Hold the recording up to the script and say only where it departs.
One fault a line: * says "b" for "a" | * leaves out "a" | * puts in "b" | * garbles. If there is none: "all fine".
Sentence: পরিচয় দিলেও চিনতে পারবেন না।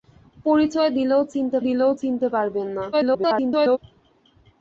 * puts in "দিলেও চিনতে"
* garbles